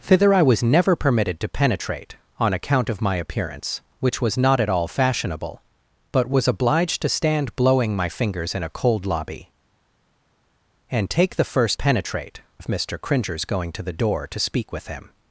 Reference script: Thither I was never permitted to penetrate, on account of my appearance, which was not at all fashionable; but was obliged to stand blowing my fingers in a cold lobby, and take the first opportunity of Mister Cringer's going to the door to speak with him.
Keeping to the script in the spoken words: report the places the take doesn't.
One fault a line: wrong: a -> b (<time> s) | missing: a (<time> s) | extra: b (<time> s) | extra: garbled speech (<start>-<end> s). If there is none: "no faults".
wrong: opportunity -> penetrate (11.7 s)